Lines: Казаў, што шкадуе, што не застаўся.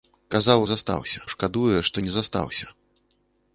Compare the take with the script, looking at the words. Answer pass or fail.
fail